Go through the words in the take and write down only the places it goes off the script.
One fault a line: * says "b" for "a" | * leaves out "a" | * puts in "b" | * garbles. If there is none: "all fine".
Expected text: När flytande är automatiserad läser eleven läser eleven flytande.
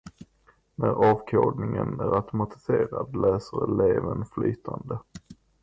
* says "avkodningen" for "flytande"
* leaves out "läser eleven"